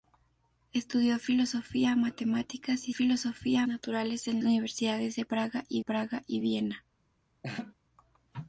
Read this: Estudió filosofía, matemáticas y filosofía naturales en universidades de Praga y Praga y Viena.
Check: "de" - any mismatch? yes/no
no